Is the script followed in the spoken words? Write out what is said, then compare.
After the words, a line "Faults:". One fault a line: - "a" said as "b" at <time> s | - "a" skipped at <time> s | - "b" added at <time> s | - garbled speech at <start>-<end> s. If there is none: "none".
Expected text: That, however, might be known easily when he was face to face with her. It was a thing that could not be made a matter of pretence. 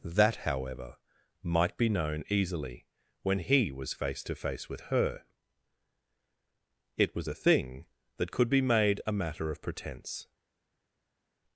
That, however, might be known easily when he was face to face with her. It was a thing that could be made a matter of pretence.
Faults:
- "not" skipped at 8.5 s